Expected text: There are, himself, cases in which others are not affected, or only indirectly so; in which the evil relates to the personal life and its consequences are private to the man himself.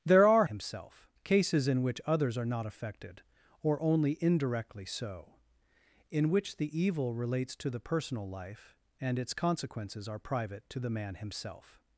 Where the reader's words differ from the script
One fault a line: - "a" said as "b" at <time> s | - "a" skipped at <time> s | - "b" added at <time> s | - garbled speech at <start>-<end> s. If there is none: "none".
none